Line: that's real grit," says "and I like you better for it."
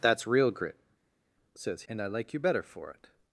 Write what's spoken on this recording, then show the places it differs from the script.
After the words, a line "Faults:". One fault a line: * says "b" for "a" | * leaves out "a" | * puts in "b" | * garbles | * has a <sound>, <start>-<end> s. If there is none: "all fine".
that's real grit," says "and I like you better for it."
Faults:
all fine